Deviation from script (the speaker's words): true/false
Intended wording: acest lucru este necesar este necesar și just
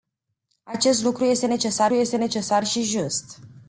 false